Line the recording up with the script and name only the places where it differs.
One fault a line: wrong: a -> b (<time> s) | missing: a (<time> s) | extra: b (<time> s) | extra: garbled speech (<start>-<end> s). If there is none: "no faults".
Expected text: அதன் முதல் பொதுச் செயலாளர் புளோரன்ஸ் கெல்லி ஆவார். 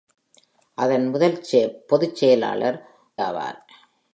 missing: புளோரன்ஸ் கெல்லி (2.8 s)